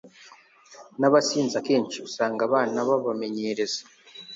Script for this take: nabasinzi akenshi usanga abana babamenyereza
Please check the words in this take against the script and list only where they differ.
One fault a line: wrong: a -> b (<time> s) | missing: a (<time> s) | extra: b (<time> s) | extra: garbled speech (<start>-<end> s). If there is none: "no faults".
no faults